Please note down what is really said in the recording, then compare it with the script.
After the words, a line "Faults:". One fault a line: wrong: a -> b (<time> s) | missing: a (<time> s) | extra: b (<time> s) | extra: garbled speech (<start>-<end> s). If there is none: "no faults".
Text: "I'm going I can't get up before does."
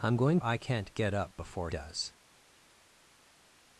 "I'm going I can't get up before does."
Faults:
no faults